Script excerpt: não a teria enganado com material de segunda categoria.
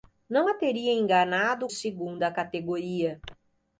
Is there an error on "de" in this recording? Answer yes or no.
yes